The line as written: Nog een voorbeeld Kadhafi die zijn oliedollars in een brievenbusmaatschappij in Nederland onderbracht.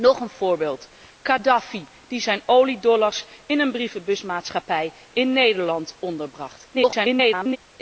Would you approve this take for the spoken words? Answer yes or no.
no